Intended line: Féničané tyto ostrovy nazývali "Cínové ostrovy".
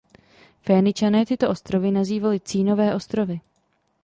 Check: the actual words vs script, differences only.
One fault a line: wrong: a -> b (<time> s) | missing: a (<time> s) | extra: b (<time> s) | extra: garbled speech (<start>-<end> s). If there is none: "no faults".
no faults